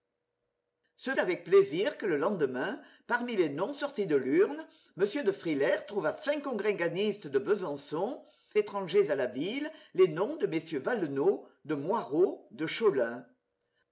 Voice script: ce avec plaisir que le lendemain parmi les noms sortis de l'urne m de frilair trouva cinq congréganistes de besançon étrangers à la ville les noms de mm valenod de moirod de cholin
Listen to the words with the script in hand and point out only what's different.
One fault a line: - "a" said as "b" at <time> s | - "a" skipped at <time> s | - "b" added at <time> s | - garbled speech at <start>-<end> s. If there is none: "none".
none